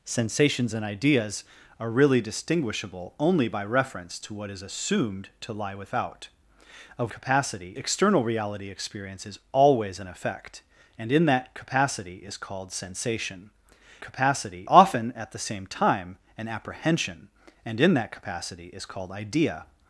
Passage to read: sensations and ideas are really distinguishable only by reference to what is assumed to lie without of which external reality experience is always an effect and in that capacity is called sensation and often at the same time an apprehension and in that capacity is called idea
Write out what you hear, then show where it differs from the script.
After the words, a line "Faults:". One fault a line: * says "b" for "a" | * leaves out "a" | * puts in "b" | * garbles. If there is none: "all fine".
sensations and ideas are really distinguishable only by reference to what is assumed to lie without of capacity external reality experience is always an effect and in that capacity is called sensation capacity often at the same time an apprehension and in that capacity is called idea
Faults:
* says "capacity" for "which"
* says "capacity" for "and"